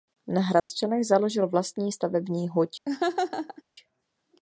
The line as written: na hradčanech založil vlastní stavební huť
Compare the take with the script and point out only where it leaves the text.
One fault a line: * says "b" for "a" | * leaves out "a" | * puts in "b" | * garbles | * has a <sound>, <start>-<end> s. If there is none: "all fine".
* has a dropout, 0.6-0.7 s
* has a laugh, 2.9-3.6 s